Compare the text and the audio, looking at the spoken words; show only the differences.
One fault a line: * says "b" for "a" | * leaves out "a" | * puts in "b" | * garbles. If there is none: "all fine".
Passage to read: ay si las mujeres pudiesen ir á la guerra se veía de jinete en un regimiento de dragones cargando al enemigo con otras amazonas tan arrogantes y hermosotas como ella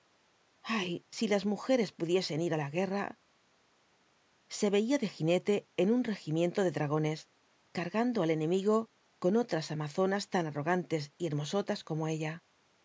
all fine